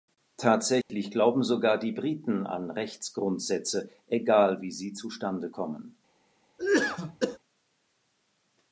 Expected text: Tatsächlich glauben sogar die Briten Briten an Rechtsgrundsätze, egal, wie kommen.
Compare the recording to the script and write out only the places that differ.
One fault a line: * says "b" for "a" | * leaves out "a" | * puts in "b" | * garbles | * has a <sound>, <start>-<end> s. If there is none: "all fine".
* has a dropout, 0.8-0.9 s
* leaves out "Briten"
* puts in "sie zustande"
* has a cough, 6.6-7.4 s